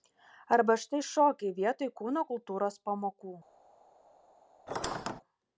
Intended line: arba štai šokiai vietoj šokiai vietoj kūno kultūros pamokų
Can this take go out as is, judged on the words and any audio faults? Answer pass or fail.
fail